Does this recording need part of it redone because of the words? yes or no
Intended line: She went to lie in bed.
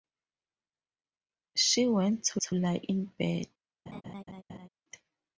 yes